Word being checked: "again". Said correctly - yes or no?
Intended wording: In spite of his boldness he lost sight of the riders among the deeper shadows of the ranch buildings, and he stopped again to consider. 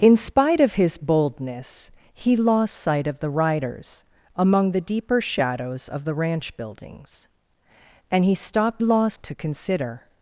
no